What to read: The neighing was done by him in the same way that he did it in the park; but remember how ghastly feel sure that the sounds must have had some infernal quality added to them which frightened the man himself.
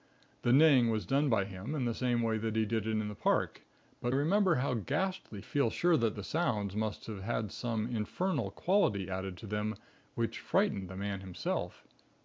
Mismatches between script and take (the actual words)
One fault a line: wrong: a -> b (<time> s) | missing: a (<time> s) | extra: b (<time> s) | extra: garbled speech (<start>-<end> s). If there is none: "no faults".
no faults